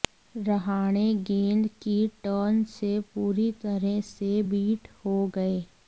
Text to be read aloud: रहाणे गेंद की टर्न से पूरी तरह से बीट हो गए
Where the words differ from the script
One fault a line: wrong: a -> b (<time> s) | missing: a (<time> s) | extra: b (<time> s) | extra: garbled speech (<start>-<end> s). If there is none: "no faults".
no faults